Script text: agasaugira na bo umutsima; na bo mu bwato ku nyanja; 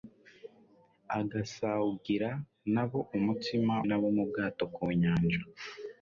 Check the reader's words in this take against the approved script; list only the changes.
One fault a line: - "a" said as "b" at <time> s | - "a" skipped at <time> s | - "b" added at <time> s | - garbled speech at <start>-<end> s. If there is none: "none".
none